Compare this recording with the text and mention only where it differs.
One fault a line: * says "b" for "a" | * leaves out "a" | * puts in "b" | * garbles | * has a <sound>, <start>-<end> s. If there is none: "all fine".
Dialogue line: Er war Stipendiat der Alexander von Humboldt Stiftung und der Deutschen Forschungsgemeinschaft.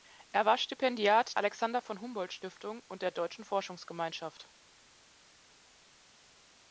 * leaves out "der"